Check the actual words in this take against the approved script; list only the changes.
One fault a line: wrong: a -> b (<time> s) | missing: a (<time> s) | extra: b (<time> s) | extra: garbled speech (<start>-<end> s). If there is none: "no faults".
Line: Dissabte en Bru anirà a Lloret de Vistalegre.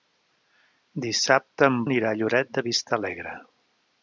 missing: Bru (1.8 s)